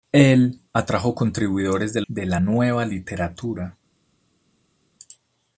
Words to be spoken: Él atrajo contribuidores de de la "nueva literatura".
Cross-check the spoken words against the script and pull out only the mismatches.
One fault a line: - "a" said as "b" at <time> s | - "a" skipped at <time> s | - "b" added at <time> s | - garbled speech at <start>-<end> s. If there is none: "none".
none